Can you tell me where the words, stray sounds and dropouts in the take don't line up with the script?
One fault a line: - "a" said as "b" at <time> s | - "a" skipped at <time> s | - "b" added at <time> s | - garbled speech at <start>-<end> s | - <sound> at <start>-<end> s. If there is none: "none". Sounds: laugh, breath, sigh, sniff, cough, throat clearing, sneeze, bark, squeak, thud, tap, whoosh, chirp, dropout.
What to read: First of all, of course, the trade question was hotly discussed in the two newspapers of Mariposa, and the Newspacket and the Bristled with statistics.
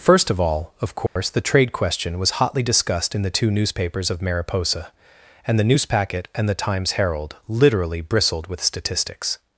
- dropout at 1.1-1.2 s
- "Times Herald literally" added at 6.5 s